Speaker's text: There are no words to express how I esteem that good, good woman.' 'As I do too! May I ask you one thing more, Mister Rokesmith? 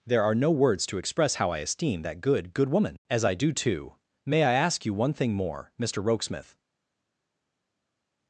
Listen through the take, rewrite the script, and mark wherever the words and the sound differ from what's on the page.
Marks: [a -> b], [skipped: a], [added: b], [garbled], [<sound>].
There are no words to express how I esteem that good, good woman.' 'As I do too! May I ask you one thing more, Mister Rokesmith?